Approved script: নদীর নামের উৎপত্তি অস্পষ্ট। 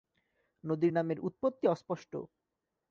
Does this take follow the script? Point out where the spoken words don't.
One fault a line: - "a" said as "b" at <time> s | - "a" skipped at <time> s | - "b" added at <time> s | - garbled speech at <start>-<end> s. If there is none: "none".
none